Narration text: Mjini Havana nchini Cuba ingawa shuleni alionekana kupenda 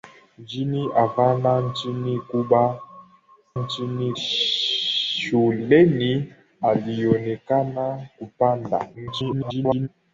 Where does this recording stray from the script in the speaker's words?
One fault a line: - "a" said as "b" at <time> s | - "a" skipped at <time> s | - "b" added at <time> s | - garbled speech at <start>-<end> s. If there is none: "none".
- "ingawa" said as "nchini" at 3.6 s
- garbled speech at 8.9-9.9 s